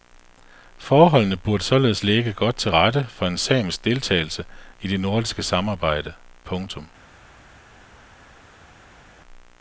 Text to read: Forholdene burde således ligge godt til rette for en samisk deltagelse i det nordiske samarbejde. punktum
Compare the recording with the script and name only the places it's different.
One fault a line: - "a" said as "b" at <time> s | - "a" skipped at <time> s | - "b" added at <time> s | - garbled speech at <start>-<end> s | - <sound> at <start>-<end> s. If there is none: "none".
none